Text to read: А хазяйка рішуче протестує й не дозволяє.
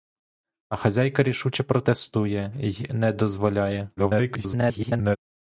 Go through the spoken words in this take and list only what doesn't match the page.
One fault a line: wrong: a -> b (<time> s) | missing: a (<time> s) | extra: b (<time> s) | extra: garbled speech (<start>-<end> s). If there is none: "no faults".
extra: garbled speech (4.0-5.2 s)